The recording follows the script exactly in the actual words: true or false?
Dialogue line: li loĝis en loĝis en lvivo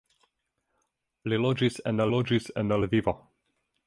true